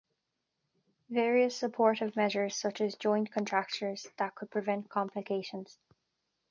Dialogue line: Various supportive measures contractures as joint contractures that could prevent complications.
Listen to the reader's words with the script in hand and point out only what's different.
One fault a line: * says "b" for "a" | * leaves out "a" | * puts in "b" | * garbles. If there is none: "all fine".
* says "such" for "contractures"